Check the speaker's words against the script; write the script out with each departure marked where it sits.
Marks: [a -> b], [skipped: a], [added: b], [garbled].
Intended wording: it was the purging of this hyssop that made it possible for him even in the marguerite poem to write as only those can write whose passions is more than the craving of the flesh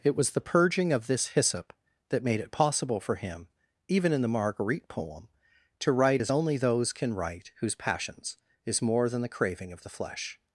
it was the purging of this hyssop that made it possible for him even in the marguerite poem to write as only those can write whose passions is more than the craving of the flesh